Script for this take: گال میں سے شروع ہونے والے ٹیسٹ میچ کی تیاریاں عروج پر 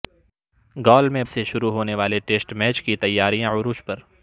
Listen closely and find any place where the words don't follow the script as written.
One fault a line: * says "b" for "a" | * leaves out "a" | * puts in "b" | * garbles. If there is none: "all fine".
all fine